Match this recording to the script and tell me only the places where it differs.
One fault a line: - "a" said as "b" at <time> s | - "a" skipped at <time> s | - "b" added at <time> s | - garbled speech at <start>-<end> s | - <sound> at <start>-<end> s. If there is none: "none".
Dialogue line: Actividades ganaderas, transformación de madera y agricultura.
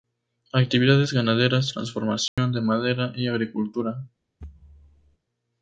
- dropout at 2.3-2.4 s
- thud at 4.4-5.2 s